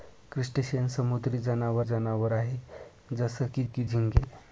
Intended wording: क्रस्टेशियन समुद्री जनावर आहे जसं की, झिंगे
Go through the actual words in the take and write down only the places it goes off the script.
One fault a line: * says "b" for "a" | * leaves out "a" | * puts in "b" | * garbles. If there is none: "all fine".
* puts in "जनावर"
* puts in "की"